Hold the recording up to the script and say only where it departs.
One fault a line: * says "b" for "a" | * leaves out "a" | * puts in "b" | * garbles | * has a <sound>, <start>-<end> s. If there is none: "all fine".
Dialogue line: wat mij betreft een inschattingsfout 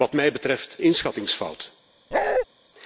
* leaves out "een"
* has a bark, 2.1-2.5 s